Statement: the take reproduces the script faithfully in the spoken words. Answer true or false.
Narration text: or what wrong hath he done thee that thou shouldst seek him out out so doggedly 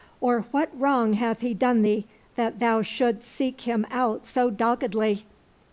false